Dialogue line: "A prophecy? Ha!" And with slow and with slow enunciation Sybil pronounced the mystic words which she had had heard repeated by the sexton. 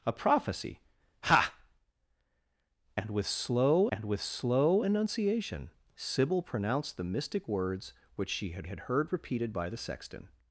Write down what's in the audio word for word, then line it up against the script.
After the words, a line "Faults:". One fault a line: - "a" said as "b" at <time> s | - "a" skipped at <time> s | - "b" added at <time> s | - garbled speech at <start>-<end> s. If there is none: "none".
"A prophecy? Ha!" And with slow and with slow enunciation Sybil pronounced the mystic words which she had had heard repeated by the sexton.
Faults:
none